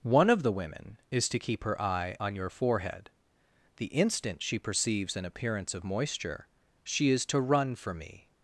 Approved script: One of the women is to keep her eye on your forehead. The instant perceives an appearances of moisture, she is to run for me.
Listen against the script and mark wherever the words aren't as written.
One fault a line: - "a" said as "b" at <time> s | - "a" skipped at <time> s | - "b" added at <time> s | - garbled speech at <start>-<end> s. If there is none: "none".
- "she" added at 4.4 s
- "appearances" said as "appearance" at 5.2 s